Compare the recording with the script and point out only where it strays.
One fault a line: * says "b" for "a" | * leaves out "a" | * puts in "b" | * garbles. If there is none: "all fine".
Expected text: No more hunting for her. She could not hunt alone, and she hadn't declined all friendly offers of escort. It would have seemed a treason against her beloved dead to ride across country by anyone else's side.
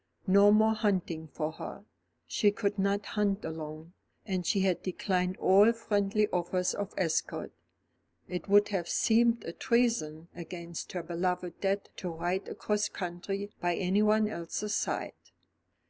* says "had" for "hadn't"